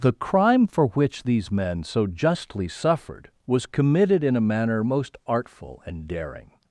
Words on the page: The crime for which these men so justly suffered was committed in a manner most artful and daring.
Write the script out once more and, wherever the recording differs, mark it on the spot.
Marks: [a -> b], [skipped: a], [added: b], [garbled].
The crime for which these men so justly suffered was committed in a manner most artful and daring.